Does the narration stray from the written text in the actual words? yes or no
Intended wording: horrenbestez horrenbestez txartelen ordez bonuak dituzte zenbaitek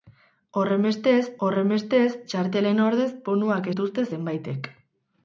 no